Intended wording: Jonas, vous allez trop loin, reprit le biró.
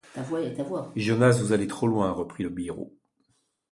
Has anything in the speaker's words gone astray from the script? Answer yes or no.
no